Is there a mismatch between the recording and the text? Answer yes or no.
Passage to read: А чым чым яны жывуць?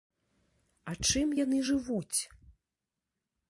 yes